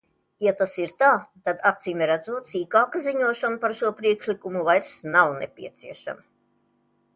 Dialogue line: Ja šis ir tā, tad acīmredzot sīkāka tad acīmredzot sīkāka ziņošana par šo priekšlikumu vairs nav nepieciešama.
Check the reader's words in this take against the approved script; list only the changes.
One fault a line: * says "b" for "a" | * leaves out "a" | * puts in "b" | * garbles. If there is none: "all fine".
* says "tas" for "šis"
* leaves out "tad acīmredzot sīkāka"